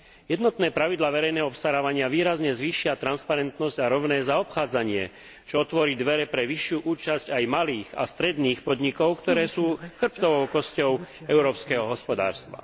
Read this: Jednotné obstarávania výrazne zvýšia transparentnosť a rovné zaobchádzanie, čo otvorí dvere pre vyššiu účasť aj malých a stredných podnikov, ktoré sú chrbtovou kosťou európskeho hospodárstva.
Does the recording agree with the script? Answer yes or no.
no